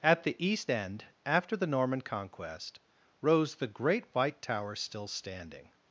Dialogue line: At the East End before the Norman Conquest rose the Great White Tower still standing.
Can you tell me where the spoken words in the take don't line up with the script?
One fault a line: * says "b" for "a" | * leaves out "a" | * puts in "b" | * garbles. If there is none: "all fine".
* says "after" for "before"